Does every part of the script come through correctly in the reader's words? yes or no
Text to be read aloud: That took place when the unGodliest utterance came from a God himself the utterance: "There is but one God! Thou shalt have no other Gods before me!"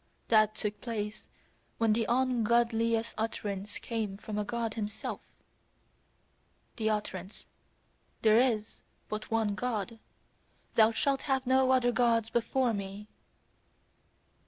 yes